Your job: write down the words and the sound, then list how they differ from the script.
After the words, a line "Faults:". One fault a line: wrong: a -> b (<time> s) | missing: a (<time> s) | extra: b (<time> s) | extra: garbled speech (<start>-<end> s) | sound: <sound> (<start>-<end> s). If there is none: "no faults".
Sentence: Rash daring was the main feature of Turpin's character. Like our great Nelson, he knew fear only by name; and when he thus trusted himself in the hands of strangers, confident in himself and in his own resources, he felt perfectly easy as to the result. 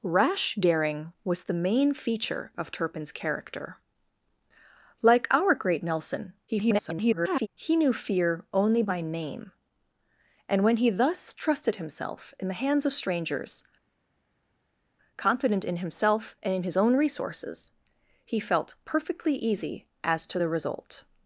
Rash daring was the main feature of Turpin's character. Like our great Nelson, [garbled] he knew fear only by name; and when he thus trusted himself in the hands of strangers, confident in himself and in his own resources, he felt perfectly easy as to the result.
Faults:
extra: garbled speech (6.5-7.5 s)